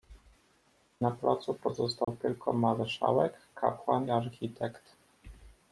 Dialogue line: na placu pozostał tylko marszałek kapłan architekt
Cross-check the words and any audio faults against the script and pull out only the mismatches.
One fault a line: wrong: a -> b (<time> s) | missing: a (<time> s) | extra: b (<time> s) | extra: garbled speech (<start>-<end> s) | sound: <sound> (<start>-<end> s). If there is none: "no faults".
sound: dropout (2.0-2.1 s)